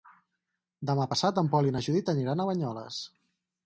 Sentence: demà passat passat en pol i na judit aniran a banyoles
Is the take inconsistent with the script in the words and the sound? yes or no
yes